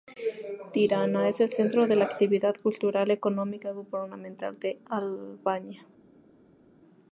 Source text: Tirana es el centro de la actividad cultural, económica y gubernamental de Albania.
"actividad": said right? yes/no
yes